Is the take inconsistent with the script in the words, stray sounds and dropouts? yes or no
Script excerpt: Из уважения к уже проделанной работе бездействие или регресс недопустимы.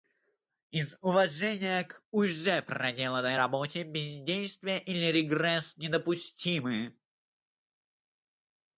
no